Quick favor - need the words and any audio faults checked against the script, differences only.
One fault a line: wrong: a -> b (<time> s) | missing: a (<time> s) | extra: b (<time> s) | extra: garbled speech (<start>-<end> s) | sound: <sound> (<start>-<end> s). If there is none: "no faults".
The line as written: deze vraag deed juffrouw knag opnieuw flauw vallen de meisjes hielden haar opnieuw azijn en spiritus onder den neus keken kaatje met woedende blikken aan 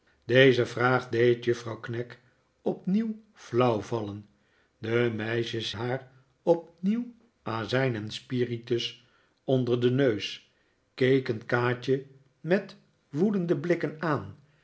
missing: hielden (5.7 s)